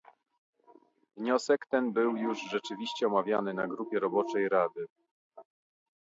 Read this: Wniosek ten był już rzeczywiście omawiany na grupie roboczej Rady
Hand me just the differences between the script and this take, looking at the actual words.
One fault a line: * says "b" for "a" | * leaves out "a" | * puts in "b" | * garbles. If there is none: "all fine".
all fine